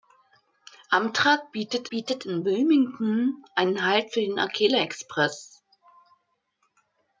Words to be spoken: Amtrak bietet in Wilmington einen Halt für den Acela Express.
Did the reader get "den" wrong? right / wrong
right